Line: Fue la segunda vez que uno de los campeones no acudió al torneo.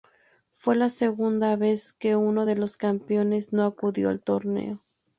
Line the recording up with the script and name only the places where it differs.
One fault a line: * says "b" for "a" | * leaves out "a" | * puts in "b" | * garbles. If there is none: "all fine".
all fine